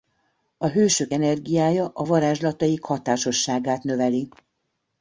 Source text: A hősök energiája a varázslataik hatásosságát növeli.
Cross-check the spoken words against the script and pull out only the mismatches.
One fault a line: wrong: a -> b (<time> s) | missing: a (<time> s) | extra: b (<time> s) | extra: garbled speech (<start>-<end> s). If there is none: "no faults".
no faults